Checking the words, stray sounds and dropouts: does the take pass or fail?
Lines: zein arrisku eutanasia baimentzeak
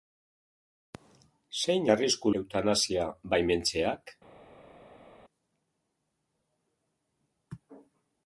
pass